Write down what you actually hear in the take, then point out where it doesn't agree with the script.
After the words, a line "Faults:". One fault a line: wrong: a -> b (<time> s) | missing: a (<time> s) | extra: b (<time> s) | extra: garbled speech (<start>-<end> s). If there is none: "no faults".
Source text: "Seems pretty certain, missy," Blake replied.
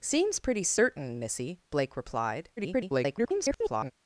"Seems pretty certain, missy," Blake replied. [garbled]
Faults:
extra: garbled speech (2.6-3.9 s)